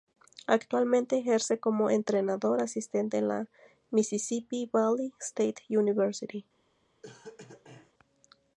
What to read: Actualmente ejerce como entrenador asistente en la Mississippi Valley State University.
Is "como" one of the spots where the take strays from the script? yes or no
no